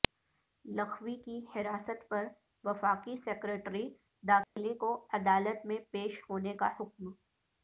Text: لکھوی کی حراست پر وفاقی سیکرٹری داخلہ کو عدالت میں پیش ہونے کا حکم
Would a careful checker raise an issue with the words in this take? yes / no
no